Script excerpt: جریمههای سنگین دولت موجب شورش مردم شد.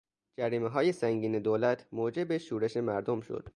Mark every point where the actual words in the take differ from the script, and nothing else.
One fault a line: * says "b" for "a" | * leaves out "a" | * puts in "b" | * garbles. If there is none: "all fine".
all fine